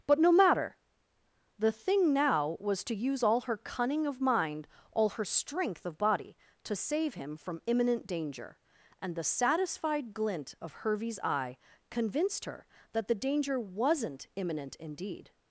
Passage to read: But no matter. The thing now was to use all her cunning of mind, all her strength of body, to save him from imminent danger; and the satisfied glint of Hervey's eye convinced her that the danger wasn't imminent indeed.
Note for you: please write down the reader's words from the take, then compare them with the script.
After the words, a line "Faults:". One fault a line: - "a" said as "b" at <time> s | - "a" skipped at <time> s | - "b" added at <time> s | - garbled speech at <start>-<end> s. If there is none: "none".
But no matter. The thing now was to use all her cunning of mind, all her strength of body, to save him from imminent danger; and the satisfied glint of Hervey's eye convinced her that the danger wasn't imminent indeed.
Faults:
none